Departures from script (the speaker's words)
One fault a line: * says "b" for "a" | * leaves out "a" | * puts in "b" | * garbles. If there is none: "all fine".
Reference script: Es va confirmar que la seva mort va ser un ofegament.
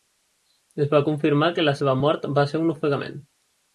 all fine